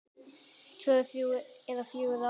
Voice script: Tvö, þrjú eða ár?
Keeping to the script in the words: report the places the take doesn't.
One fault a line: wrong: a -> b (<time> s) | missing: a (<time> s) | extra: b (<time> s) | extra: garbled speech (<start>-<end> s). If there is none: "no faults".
extra: fjögur (1.9 s)